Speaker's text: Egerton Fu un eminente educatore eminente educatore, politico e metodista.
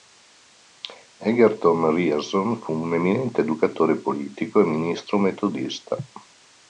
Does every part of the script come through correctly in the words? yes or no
no